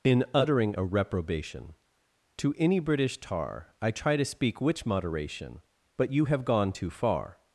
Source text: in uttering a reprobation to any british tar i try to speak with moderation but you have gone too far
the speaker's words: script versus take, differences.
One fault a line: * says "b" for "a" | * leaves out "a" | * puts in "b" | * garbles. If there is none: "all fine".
* says "which" for "with"